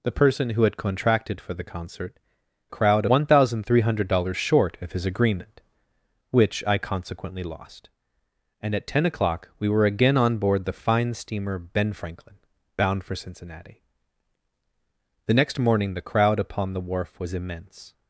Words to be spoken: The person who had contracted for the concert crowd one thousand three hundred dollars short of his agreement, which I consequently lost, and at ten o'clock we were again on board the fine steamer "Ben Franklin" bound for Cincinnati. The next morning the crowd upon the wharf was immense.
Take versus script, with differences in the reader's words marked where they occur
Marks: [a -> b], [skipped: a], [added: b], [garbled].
The person who had contracted for the concert crowd one thousand three hundred dollars short of his agreement, which I consequently lost, and at ten o'clock we were again on board the fine steamer "Ben Franklin" bound for Cincinnati. The next morning the crowd upon the wharf was immense.